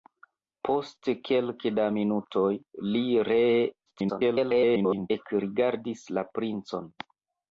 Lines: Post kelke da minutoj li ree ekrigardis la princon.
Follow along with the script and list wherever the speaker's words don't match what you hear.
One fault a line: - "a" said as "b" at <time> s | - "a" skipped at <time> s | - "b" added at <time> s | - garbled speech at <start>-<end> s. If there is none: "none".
- garbled speech at 3.9-5.1 s